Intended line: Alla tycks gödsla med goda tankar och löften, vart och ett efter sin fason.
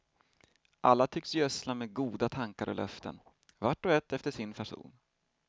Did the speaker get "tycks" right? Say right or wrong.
right